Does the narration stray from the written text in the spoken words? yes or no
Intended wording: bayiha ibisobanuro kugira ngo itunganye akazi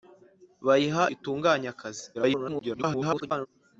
yes